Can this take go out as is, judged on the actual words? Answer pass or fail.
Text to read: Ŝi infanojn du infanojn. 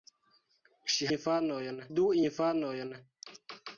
pass